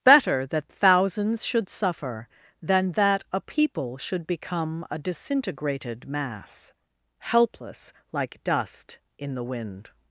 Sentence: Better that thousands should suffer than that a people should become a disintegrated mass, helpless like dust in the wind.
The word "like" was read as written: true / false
true